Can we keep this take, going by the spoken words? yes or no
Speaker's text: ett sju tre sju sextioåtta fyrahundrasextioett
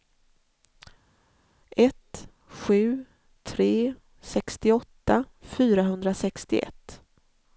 no